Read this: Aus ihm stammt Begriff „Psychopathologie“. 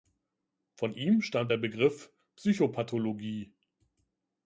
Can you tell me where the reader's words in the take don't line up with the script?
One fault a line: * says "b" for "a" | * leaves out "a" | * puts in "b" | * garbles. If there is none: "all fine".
* says "Von" for "Aus"
* puts in "der"